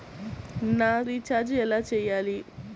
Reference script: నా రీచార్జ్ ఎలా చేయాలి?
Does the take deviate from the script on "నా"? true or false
false